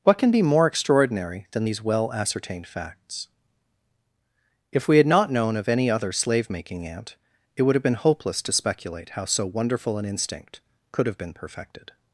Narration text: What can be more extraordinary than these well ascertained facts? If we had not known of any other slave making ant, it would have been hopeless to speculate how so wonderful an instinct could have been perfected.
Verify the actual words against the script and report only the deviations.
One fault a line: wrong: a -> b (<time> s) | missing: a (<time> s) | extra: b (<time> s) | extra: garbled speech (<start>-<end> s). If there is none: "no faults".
no faults